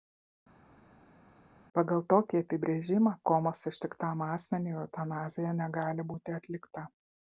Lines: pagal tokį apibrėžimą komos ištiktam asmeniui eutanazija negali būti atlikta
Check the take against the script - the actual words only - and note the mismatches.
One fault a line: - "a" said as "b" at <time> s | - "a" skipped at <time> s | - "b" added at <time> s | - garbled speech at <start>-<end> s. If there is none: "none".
none